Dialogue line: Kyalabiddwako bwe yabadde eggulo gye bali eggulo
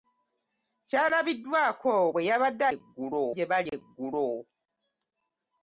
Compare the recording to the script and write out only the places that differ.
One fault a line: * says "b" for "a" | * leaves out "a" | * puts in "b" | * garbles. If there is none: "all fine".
all fine